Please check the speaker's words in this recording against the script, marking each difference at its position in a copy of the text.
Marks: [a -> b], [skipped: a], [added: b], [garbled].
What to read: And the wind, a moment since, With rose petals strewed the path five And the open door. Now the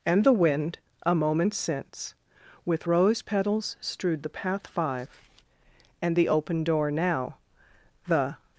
And the wind, a moment since, With rose petals strewed the path five And the open door. Now the